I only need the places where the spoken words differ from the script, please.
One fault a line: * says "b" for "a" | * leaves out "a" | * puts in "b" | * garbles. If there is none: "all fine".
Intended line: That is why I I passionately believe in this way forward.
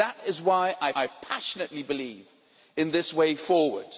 all fine